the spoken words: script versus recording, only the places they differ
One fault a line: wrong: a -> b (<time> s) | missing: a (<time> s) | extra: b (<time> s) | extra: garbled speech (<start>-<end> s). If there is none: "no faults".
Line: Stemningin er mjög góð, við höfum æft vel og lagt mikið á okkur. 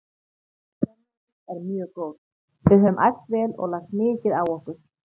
no faults